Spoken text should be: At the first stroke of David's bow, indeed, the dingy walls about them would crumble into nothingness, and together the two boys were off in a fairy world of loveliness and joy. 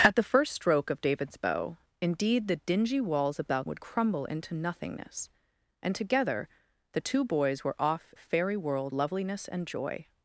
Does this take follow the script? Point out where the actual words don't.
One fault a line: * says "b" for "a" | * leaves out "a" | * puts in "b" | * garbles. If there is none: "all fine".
* leaves out "them"
* leaves out "in"
* leaves out "of"